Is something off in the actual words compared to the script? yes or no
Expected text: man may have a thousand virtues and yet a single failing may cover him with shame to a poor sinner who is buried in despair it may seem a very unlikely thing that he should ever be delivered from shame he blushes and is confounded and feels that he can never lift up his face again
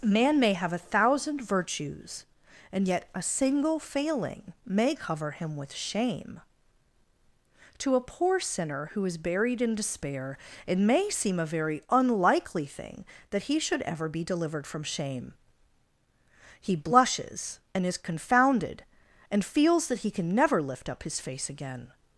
no